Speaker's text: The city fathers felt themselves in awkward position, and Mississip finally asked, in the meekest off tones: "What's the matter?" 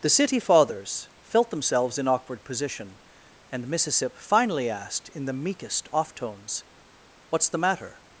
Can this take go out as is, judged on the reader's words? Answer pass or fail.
pass